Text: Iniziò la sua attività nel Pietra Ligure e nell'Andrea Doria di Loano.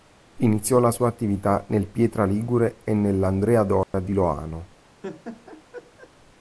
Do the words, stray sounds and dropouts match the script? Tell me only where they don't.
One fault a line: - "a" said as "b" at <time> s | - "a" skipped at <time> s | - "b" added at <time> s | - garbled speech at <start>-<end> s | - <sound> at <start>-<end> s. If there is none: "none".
- dropout at 3.8-3.9 s
- laugh at 5.0-6.1 s